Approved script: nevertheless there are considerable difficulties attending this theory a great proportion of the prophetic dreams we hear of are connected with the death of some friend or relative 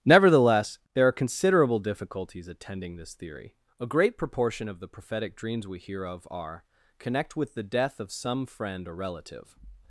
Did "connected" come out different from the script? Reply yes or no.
yes